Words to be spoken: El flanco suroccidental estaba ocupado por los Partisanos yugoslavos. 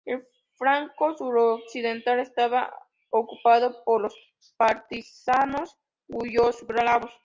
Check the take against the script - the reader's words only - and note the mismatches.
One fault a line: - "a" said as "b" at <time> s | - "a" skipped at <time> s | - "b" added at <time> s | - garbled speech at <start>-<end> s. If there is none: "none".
none